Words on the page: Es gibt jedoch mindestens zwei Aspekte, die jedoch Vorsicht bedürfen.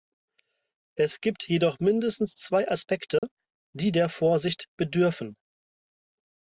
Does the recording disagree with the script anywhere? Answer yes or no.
yes